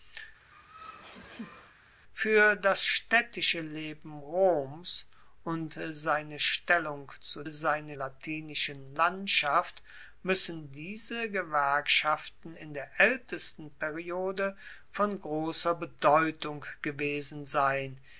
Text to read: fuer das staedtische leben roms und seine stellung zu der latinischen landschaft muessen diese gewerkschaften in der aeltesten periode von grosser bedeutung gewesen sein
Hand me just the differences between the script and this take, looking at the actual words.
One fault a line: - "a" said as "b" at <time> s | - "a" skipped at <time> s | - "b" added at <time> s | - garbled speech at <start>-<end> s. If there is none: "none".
- "der" said as "seine" at 7.5 s